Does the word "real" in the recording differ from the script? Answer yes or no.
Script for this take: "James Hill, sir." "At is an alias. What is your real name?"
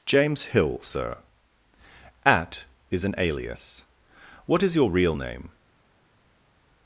no